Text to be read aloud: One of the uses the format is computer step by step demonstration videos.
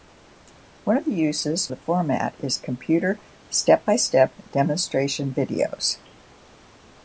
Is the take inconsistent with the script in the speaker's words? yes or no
no